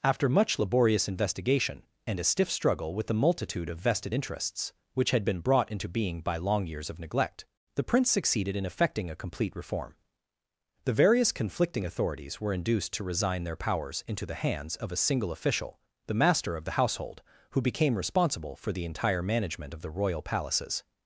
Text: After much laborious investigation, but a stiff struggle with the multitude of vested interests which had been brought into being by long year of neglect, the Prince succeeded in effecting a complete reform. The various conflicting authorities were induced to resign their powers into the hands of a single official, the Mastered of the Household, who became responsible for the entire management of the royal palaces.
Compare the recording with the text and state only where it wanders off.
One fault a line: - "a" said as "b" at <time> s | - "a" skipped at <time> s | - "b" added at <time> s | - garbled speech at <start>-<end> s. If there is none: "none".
- "but" said as "and" at 2.1 s
- "year" said as "years" at 6.7 s
- "Mastered" said as "Master" at 16.1 s